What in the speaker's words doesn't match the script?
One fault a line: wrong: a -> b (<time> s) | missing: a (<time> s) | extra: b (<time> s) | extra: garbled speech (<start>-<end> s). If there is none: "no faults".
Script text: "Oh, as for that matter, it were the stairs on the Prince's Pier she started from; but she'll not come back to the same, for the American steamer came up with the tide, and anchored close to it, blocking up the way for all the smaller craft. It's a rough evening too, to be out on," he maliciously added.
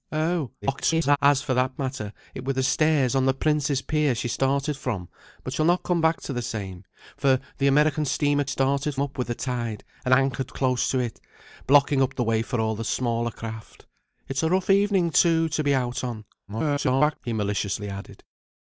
extra: garbled speech (0.6-1.2 s)
wrong: came -> started (8.5 s)
extra: garbled speech (16.5-17.2 s)